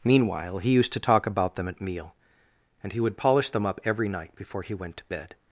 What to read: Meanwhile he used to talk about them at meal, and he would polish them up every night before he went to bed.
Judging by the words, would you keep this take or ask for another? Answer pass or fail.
pass